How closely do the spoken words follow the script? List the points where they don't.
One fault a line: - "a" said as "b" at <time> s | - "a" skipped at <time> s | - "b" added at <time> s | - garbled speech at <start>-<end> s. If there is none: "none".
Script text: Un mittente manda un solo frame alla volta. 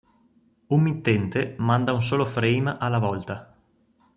none